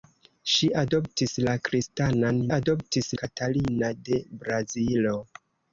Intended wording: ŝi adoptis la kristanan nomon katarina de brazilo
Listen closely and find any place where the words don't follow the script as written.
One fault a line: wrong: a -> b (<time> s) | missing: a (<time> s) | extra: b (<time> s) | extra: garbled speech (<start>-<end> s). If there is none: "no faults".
wrong: nomon -> adoptis (2.6 s)